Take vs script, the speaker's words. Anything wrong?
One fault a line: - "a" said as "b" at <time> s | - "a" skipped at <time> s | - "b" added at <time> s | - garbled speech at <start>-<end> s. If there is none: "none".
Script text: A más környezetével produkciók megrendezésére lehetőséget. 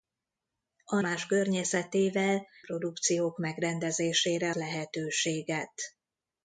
none